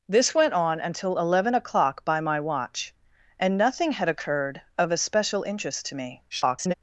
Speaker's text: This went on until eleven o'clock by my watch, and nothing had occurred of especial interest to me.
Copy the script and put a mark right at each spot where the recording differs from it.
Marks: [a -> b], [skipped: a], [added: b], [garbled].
This went on until eleven o'clock by my watch, and nothing had occurred of especial interest to me. [garbled]